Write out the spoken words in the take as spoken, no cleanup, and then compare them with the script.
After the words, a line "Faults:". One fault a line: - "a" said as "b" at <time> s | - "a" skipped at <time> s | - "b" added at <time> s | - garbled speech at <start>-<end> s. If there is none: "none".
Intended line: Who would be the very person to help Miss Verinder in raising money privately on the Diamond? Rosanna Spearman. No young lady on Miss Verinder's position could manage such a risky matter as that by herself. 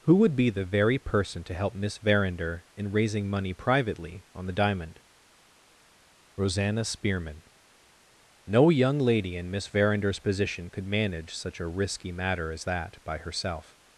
Who would be the very person to help Miss Verinder in raising money privately on the Diamond? Rosanna Spearman. No young lady in Miss Verinder's position could manage such a risky matter as that by herself.
Faults:
- "on" said as "in" at 9.3 s